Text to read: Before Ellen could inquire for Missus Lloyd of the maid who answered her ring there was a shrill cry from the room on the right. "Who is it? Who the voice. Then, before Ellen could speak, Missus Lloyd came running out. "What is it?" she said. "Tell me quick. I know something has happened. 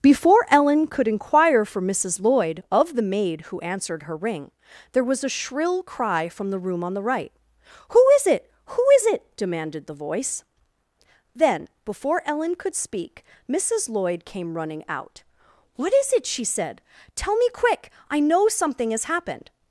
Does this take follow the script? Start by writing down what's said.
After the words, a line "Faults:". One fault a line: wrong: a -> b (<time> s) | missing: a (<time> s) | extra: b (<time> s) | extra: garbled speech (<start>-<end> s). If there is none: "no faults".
Before Ellen could inquire for Missus Lloyd of the maid who answered her ring there was a shrill cry from the room on the right. "Who is it? Who is it?" demanded the voice. Then, before Ellen could speak, Missus Lloyd came running out. "What is it?" she said. "Tell me quick. I know something has happened.
Faults:
extra: is it demanded (8.9 s)